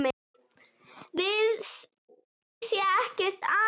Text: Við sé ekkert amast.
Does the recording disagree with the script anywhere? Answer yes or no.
no